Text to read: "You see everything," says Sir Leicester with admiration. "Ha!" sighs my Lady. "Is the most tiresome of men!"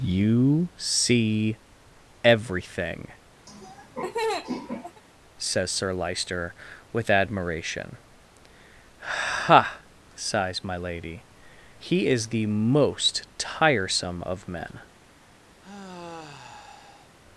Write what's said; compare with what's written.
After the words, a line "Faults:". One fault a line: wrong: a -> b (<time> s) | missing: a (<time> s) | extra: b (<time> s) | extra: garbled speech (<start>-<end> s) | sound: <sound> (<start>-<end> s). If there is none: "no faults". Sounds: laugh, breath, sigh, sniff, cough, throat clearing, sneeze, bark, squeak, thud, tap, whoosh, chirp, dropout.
"You see everything," says Sir Leicester with admiration. "Ha!" sighs my Lady. "He is the most tiresome of men!"
Faults:
sound: laugh (3.5-5.0 s)
extra: He (11.8 s)
sound: sigh (15.6-17.1 s)